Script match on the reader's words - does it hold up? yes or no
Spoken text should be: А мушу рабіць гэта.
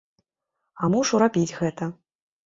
yes